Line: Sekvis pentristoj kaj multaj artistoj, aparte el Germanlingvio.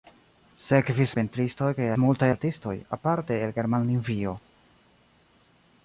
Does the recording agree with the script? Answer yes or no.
yes